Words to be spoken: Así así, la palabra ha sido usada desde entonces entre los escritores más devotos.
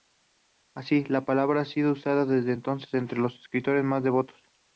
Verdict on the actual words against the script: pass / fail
fail